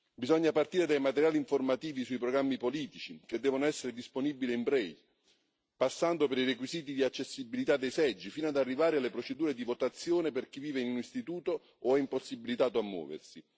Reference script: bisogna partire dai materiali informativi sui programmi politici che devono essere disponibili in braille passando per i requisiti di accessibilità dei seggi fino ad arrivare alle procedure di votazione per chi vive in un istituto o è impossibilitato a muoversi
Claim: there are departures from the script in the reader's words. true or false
false